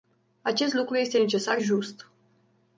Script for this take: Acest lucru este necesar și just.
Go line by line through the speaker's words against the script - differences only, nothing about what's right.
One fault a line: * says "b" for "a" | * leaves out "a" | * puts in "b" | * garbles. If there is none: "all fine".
* leaves out "și"